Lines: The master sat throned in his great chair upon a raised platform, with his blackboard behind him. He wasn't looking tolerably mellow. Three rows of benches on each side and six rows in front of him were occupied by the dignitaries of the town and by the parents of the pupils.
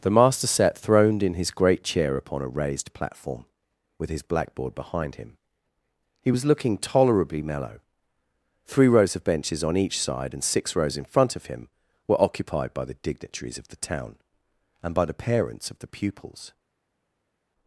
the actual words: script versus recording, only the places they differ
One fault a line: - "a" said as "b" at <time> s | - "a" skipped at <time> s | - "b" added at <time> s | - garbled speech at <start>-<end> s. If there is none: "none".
- "wasn't" said as "was" at 6.3 s